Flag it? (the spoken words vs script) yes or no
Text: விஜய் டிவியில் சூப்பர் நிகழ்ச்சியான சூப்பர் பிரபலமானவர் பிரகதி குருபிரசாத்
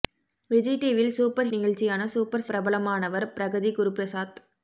no